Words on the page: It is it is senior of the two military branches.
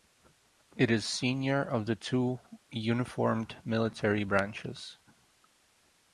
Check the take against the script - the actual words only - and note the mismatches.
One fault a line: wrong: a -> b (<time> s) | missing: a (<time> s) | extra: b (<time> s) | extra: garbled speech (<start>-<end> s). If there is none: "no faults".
missing: it is (1.1 s)
extra: uniformed (2.7 s)